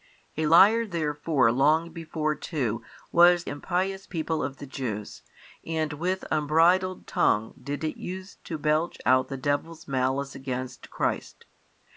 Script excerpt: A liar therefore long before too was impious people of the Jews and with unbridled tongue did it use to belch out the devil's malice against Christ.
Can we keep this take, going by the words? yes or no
yes